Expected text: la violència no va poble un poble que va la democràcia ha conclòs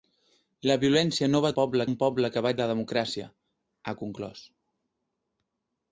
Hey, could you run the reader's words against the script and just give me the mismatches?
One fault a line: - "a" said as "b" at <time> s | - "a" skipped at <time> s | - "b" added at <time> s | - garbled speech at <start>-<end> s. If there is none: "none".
none